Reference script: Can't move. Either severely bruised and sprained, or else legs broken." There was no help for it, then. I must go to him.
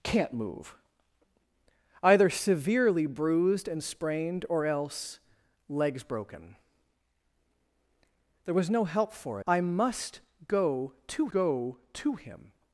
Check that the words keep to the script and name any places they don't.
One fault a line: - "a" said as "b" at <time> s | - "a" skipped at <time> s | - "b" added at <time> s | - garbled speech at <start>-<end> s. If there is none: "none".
- "it then I must" said as "I must go to" at 9.5 s